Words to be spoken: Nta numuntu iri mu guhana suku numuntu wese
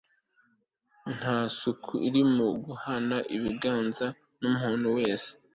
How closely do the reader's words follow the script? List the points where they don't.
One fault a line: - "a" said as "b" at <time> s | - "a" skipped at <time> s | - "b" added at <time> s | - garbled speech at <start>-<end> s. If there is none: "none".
- "numuntu" said as "suku" at 1.6 s
- "suku" said as "ibiganza" at 3.4 s